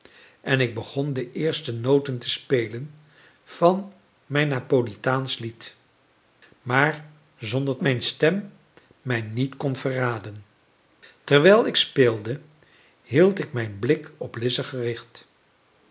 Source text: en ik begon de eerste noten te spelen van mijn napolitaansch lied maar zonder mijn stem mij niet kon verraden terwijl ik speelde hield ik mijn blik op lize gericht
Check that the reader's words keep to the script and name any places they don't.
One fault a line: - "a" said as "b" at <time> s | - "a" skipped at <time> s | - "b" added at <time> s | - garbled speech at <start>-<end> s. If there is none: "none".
none